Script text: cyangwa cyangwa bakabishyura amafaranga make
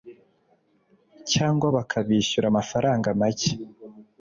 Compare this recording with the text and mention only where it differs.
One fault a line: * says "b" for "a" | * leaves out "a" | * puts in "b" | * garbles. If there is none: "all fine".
* leaves out "cyangwa"